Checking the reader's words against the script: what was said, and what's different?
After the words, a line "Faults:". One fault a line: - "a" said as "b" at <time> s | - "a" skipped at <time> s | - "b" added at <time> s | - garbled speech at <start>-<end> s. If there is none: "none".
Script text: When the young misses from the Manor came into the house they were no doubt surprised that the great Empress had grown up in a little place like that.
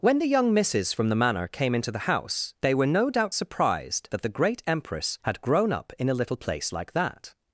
When the young misses from the Manor came into the house they were no doubt surprised that the great Empress had grown up in a little place like that.
Faults:
none